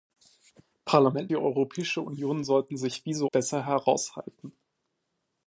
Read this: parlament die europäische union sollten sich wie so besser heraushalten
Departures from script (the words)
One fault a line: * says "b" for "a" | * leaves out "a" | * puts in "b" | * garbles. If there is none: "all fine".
all fine